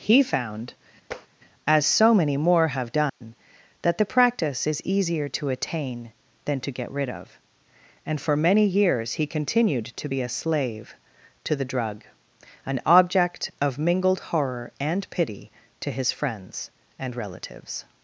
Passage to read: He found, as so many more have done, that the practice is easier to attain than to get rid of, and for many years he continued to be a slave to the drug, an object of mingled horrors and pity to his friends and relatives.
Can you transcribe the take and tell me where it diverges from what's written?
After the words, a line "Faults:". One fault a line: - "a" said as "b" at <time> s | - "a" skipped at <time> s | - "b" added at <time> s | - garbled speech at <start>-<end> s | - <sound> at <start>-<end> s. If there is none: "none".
He found, as so many more have done, that the practice is easier to attain than to get rid of, and for many years he continued to be a slave to the drug, an object of mingled horror and pity to his friends and relatives.
Faults:
- tap at 1.1-1.3 s
- dropout at 3.1-3.2 s
- "horrors" said as "horror" at 14.3 s